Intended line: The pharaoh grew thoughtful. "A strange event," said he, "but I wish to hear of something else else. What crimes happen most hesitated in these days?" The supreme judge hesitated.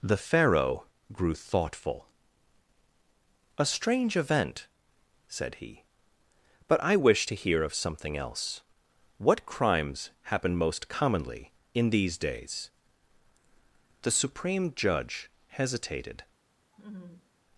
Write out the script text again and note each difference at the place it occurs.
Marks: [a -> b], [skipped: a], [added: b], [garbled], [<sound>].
The pharaoh grew thoughtful. "A strange event," said he, "but I wish to hear of something else [skipped: else.] What crimes happen most [hesitated -> commonly] in these days?" The supreme judge hesitated. [laugh]